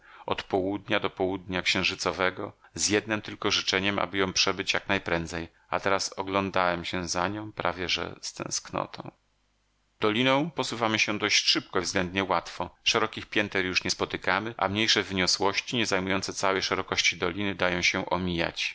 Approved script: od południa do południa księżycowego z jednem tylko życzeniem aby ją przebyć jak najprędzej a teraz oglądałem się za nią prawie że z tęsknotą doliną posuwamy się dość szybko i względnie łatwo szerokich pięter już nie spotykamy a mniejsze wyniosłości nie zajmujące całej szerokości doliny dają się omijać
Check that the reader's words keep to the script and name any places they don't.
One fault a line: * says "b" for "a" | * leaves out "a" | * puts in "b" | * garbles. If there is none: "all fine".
all fine